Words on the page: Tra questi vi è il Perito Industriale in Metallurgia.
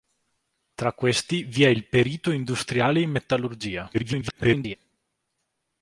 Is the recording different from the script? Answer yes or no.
yes